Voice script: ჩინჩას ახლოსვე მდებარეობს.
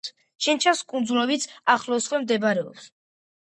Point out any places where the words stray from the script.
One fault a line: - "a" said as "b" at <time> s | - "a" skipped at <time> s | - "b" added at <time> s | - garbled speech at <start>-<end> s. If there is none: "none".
- "კუნძულებიც" added at 0.9 s